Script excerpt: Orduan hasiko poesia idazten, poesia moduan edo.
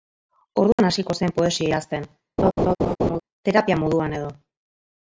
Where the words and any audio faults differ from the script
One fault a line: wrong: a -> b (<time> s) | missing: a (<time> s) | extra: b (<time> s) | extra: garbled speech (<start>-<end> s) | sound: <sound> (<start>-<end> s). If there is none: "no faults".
sound: dropout (0.7-0.8 s)
extra: zen (1.2 s)
sound: laugh (2.4-3.2 s)
wrong: poesia -> terapia (3.5 s)